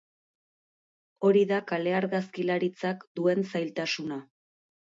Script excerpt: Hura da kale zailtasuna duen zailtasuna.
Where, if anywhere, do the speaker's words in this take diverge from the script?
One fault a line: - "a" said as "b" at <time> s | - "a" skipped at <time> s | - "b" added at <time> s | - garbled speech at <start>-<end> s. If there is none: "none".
- "Hura" said as "Hori" at 1.3 s
- "zailtasuna" said as "argazkilaritzak" at 2.0 s